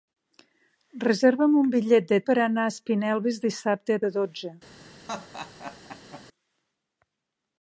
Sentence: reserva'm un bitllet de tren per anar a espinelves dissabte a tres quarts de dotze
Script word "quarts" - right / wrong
wrong